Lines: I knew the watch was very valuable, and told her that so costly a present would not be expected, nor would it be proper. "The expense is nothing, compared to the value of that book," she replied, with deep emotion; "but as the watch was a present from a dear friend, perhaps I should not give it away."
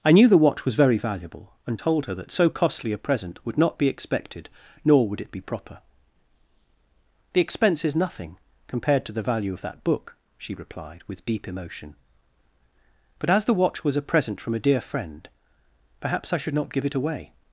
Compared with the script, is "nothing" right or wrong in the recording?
right